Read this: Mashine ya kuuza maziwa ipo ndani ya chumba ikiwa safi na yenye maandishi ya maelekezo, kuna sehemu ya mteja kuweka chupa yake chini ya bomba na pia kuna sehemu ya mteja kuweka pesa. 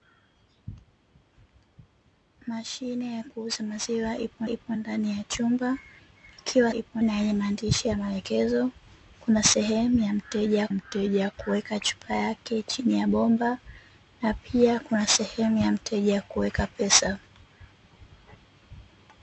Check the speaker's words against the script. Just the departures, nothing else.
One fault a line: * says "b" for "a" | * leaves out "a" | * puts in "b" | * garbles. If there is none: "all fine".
* puts in "ipo"
* says "ipo" for "safi"
* puts in "mteja"